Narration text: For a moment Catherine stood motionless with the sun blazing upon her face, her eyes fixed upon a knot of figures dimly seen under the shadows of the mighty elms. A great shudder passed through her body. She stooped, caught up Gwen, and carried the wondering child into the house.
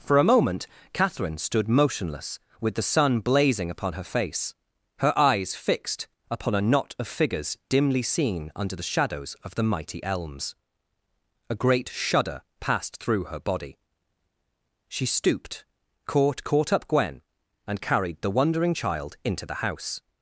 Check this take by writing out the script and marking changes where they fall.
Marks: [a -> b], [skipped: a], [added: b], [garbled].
For a moment Catherine stood motionless with the sun blazing upon her face, her eyes fixed upon a knot of figures dimly seen under the shadows of the mighty elms. A great shudder passed through her body. She stooped, caught [added: caught] up Gwen, and carried the wondering child into the house.